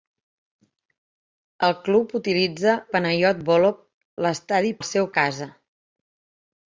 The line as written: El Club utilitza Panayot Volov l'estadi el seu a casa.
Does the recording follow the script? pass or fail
pass